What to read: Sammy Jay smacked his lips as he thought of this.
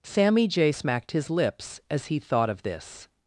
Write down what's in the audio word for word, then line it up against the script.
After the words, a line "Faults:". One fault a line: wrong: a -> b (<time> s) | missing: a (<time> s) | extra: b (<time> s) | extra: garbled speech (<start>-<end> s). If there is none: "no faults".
Sammy Jay smacked his lips as he thought of this.
Faults:
no faults